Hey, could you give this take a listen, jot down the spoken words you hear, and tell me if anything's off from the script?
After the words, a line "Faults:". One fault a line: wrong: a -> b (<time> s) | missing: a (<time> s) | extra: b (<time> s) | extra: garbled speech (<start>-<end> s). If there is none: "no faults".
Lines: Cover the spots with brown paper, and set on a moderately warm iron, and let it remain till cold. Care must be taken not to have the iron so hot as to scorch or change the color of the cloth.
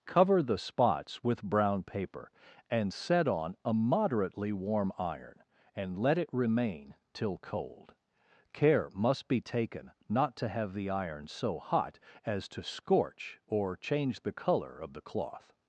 Cover the spots with brown paper, and set on a moderately warm iron, and let it remain till cold. Care must be taken not to have the iron so hot as to scorch or change the color of the cloth.
Faults:
no faults